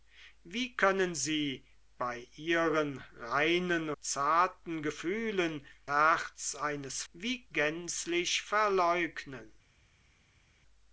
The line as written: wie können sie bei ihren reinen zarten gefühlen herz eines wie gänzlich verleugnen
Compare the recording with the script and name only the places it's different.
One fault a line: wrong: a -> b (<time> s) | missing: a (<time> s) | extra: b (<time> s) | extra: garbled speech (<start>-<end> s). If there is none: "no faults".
no faults